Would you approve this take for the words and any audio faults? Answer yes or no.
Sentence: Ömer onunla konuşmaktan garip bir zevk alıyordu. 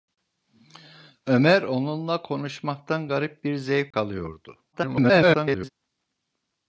no